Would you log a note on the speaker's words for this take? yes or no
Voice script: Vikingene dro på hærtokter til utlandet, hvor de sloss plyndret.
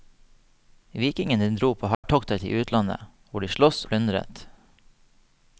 no